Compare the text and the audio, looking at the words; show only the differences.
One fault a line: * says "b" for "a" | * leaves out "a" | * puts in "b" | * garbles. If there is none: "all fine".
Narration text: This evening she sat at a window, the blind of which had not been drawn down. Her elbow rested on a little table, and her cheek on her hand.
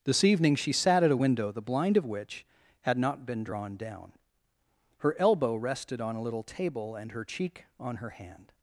all fine